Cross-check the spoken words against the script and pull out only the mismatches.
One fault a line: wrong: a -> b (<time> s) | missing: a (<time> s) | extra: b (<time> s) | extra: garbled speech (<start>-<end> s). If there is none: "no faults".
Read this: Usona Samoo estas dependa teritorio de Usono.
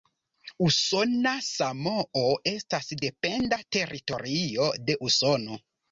no faults